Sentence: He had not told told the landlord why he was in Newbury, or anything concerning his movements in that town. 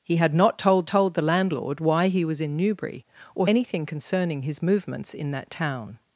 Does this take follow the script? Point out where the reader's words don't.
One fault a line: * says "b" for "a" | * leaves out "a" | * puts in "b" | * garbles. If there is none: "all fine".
all fine